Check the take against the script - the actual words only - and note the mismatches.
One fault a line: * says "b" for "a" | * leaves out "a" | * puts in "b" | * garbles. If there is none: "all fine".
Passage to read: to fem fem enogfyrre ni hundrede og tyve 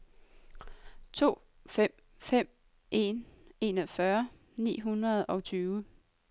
* puts in "en"